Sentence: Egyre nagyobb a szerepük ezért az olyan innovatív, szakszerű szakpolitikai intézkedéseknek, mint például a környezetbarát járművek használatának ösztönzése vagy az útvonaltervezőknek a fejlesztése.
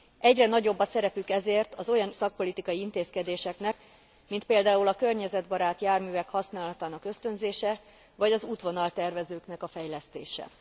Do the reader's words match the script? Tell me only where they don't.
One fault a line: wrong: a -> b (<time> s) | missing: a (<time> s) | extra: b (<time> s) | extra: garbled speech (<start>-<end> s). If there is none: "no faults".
missing: innovatív szakszerű (2.1 s)